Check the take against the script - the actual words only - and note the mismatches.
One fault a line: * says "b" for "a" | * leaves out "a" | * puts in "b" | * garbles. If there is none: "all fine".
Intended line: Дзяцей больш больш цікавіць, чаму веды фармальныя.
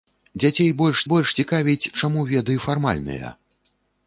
all fine